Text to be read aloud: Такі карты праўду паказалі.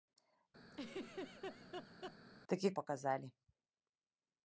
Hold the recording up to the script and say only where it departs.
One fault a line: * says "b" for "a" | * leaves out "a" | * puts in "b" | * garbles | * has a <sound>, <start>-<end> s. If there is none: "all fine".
* has a laugh, 0.7-2.2 s
* leaves out "карты праўду"